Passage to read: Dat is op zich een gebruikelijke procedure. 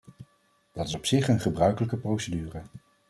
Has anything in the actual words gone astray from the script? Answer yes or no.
no